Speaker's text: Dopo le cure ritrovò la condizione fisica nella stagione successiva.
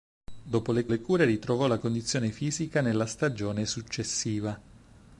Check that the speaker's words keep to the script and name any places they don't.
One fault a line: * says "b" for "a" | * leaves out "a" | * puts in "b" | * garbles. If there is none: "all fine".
* puts in "le"